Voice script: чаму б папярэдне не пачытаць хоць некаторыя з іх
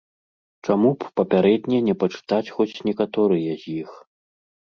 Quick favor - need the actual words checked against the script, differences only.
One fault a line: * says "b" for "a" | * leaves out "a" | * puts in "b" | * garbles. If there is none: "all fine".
all fine